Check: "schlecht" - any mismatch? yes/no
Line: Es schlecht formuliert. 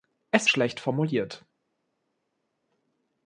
no